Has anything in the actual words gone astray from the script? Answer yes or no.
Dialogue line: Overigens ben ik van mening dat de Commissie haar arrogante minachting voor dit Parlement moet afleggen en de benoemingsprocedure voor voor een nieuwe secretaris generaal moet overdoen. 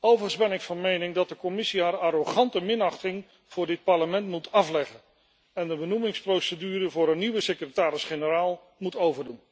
yes